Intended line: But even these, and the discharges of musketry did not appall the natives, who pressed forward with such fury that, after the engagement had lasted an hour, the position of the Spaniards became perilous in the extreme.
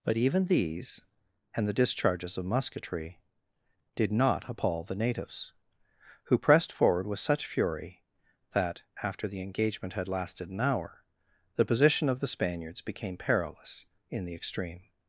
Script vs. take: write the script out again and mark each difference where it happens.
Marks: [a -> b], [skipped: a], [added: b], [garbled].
But even these, and the discharges of musketry did not appall the natives, who pressed forward with such fury that, after the engagement had lasted an hour, the position of the Spaniards became perilous in the extreme.